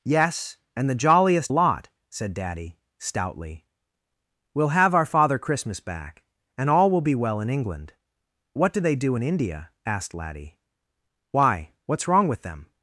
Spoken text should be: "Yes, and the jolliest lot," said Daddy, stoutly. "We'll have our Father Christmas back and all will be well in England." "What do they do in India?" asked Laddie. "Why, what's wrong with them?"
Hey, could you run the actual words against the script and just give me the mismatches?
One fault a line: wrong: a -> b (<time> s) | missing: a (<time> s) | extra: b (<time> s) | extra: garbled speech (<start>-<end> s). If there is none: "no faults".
no faults